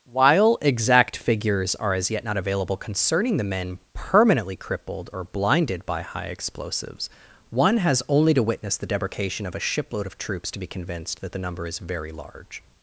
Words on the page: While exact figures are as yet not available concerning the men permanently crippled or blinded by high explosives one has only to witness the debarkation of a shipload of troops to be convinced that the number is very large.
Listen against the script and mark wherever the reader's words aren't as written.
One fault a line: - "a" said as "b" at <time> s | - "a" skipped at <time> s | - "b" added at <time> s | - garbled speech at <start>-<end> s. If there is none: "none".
none